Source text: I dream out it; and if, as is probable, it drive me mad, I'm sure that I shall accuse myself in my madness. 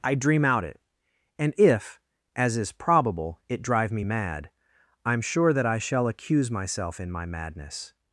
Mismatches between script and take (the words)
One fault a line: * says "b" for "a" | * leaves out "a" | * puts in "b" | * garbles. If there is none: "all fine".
all fine